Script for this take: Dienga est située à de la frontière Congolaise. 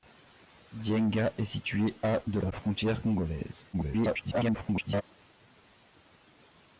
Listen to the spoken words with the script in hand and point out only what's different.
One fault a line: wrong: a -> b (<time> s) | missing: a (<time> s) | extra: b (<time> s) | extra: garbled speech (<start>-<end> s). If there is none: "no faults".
extra: garbled speech (3.7-5.0 s)